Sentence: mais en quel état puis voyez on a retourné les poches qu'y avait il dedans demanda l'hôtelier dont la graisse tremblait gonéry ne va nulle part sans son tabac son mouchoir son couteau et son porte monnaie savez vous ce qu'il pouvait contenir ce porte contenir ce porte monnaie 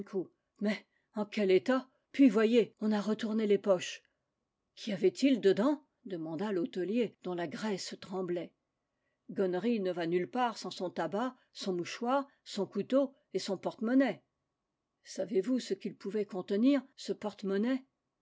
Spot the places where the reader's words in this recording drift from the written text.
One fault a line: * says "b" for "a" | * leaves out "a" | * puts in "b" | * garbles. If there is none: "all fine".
* leaves out "contenir ce porte"